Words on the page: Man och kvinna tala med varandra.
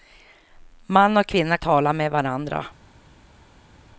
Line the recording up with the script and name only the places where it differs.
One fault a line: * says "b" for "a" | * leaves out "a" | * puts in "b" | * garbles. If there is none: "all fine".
all fine